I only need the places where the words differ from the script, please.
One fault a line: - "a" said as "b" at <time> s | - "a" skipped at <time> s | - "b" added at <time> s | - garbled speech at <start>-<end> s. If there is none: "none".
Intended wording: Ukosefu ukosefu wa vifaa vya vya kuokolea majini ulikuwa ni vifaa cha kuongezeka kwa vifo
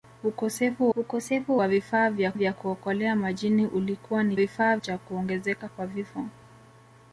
none